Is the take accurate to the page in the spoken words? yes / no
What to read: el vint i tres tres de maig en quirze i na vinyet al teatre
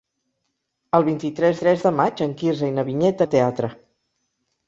yes